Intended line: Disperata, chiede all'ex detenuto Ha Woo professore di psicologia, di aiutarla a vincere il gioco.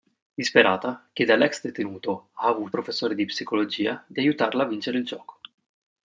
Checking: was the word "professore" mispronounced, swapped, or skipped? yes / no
no